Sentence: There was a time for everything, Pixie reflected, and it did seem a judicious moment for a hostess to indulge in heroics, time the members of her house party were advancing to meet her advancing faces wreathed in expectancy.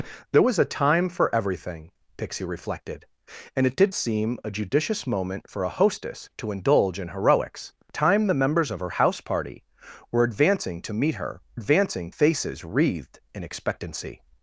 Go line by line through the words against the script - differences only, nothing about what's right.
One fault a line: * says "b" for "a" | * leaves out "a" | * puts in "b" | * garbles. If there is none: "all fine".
all fine